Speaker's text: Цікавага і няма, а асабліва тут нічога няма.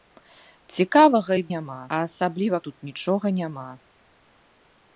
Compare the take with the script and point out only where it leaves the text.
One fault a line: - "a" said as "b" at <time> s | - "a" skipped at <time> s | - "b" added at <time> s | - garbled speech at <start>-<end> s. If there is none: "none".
none